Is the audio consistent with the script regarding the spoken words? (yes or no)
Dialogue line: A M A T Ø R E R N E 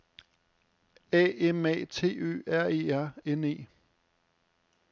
yes